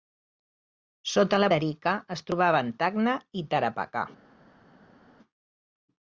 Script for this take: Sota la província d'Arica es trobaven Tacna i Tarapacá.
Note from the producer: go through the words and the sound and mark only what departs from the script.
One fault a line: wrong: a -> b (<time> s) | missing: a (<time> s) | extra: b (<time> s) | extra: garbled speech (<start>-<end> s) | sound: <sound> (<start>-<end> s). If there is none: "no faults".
missing: província (1.5 s)